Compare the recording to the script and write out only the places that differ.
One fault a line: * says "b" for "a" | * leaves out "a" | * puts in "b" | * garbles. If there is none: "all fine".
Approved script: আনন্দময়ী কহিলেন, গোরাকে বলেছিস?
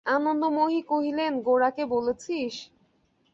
all fine